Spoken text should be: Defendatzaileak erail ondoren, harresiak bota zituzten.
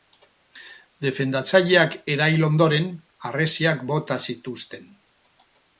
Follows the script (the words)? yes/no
yes